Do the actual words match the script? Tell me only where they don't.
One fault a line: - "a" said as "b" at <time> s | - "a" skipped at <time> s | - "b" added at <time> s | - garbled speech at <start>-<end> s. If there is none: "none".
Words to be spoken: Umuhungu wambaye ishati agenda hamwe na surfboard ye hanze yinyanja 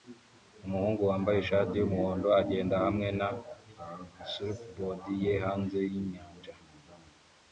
- "yumuhondo" added at 1.7 s